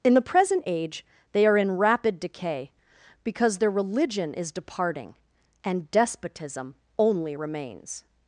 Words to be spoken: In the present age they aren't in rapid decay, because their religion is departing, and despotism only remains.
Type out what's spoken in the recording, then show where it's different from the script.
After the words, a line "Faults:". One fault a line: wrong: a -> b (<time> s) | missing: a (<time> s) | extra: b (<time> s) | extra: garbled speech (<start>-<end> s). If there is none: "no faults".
In the present age they are in rapid decay, because their religion is departing, and despotism only remains.
Faults:
wrong: aren't -> are (1.4 s)